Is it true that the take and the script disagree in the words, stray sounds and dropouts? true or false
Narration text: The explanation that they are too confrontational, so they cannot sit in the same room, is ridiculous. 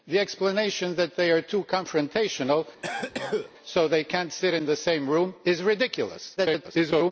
true